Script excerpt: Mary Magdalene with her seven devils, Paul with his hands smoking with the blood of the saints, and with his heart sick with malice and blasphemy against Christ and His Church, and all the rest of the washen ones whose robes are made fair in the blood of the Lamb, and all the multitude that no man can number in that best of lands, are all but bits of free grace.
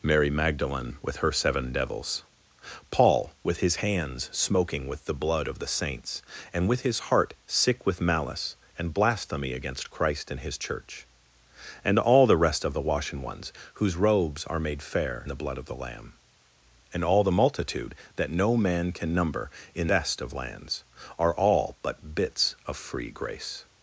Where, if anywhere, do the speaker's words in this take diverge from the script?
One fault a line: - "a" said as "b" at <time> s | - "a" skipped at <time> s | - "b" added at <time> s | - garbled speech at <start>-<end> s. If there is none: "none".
- "in" skipped at 15.3 s
- "that" skipped at 19.9 s